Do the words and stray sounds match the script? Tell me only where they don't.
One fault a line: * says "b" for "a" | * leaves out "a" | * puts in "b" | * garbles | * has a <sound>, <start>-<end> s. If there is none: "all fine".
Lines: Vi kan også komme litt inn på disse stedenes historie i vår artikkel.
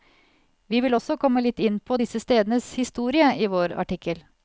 * says "vil" for "kan"